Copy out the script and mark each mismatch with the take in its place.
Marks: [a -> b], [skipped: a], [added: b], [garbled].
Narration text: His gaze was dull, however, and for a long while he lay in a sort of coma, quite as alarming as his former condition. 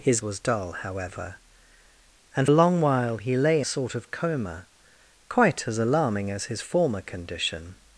His [skipped: gaze] was dull, however, and [skipped: for] a long while he lay [skipped: in] a sort of coma, quite as alarming as his former condition.